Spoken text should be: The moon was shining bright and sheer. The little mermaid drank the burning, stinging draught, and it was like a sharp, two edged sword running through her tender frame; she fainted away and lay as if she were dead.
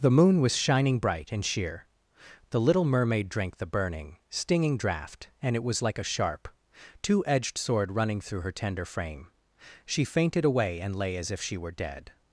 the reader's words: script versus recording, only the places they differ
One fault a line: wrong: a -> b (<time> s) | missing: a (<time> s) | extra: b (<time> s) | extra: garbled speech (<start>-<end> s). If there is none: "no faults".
no faults